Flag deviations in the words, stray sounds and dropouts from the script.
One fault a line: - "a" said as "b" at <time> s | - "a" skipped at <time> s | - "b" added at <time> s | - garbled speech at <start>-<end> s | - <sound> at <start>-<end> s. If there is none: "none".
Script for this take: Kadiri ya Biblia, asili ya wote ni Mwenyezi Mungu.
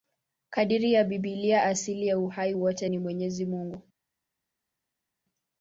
- "uhai" added at 2.2 s